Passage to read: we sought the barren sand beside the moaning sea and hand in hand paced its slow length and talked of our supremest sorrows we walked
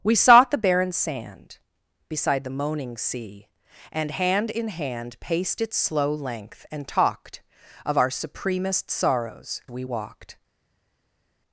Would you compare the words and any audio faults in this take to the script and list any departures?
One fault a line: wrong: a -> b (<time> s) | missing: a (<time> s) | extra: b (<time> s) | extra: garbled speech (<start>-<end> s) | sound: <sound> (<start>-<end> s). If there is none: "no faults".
no faults